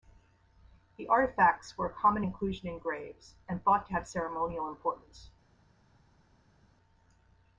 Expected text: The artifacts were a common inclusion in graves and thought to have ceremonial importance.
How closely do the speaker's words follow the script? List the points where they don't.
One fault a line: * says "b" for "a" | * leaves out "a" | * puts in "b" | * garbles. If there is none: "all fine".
all fine